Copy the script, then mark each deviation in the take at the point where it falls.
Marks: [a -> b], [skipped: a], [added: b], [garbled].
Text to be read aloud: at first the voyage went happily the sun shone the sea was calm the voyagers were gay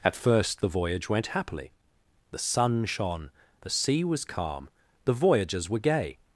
at first the voyage went happily the sun shone the sea was calm the voyagers were gay